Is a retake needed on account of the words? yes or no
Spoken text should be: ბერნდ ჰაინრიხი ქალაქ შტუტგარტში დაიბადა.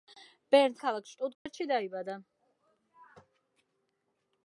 yes